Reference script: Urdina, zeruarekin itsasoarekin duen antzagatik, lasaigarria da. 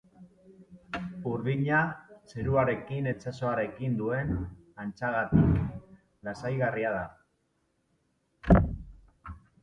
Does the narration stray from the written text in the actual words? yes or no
no